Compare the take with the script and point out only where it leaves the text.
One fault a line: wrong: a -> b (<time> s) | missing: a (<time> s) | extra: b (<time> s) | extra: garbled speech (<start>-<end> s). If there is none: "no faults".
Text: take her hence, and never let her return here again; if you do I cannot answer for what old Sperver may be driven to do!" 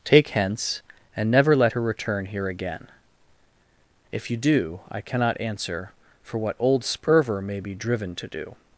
missing: her (0.3 s)